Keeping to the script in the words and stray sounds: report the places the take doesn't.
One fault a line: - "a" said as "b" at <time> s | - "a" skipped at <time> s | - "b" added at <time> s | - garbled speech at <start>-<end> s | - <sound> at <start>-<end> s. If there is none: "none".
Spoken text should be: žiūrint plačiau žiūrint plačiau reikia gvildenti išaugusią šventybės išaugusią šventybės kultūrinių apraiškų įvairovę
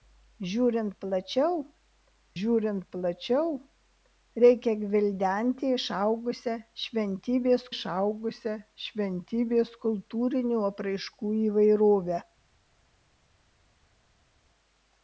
none